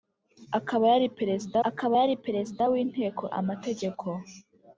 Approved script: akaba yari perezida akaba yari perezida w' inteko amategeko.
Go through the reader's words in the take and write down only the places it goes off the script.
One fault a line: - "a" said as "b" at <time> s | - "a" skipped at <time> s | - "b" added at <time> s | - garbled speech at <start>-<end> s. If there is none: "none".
none